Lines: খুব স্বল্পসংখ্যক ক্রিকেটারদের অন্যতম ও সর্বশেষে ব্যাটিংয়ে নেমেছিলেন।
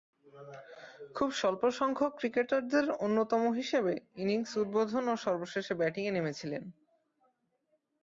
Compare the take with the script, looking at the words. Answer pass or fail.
fail